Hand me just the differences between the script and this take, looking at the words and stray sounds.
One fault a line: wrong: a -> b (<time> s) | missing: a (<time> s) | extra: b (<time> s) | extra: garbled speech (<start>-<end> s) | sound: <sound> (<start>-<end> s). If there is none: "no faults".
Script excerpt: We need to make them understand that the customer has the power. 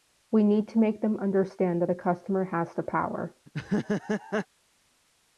sound: laugh (3.5-4.5 s)